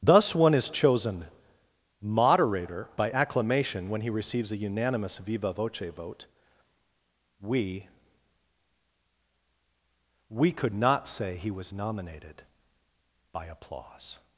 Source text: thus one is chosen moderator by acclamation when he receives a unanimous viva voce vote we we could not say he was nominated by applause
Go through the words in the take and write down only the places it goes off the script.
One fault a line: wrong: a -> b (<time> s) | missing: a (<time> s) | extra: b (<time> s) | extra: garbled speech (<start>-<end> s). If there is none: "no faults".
no faults